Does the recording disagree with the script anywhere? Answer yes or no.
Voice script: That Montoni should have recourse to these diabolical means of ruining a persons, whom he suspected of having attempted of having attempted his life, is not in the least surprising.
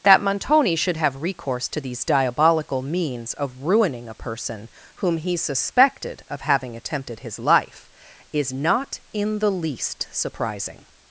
yes